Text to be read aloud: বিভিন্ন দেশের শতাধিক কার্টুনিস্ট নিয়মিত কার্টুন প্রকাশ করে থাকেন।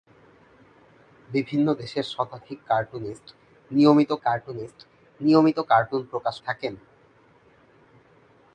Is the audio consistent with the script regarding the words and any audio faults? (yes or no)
no